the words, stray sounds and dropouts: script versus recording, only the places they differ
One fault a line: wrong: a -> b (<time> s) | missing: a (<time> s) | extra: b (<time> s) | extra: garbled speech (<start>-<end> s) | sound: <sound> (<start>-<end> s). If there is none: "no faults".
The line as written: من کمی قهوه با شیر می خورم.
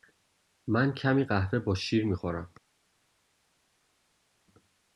no faults